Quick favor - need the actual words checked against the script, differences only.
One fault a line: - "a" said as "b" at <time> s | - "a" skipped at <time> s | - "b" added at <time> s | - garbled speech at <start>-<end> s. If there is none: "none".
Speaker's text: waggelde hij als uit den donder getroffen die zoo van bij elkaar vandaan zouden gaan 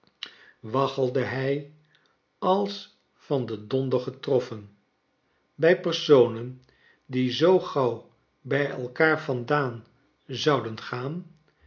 - "uit" said as "van" at 3.1 s
- "bij personen" added at 5.5 s
- "van" said as "gauw" at 7.6 s